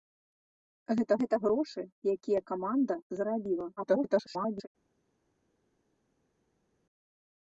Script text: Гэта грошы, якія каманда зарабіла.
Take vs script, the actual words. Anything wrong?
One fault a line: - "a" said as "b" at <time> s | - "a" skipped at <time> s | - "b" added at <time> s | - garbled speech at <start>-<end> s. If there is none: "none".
- "гэта" added at 1.2 s
- garbled speech at 3.8-4.7 s